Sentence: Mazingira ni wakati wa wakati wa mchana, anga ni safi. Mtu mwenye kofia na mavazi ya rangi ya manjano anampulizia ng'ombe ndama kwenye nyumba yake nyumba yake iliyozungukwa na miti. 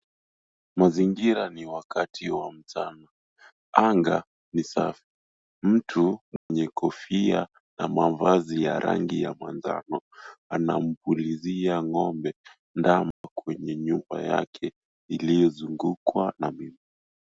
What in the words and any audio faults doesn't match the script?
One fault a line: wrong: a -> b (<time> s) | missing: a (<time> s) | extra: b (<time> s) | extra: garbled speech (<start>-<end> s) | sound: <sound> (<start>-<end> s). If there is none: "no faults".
missing: wakati wa (2.5 s)
sound: dropout (6.4-6.5 s)
sound: dropout (13.1-13.2 s)
missing: nyumba yake (14.7 s)